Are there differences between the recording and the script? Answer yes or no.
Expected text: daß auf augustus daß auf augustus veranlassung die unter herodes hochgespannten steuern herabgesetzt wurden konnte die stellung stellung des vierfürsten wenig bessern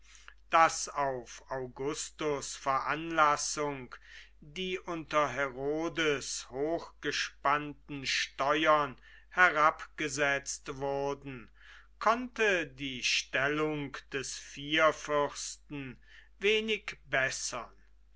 yes